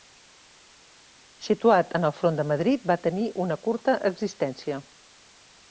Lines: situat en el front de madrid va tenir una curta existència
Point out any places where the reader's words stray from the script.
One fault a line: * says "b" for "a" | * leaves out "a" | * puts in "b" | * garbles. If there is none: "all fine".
all fine